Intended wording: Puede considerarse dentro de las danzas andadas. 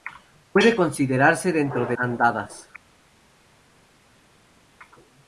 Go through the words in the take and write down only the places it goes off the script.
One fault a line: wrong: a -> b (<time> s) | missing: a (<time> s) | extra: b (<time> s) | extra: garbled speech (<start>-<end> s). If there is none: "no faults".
missing: las danzas (2.0 s)